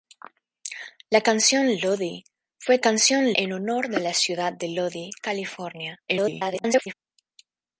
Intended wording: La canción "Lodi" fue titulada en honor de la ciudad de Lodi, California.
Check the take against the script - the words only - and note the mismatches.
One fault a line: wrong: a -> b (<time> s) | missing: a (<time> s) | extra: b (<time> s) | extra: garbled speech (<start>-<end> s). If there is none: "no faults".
wrong: titulada -> canción (2.8 s)
extra: garbled speech (6.1-6.9 s)